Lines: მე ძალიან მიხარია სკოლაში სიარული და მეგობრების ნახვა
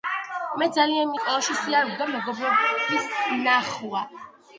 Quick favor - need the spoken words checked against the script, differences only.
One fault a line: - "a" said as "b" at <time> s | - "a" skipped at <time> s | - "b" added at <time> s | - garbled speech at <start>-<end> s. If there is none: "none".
- "მიხარია" skipped at 1.1 s